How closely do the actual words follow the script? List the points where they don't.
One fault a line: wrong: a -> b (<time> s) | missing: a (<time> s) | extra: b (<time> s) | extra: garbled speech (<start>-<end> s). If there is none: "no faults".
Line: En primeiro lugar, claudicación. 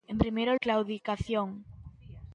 missing: lugar (0.6 s)